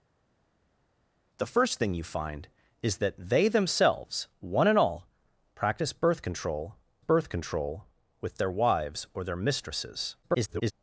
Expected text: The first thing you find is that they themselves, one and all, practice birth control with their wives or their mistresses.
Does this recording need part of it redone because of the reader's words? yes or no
yes